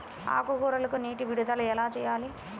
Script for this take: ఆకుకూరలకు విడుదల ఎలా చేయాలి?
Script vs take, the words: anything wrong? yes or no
yes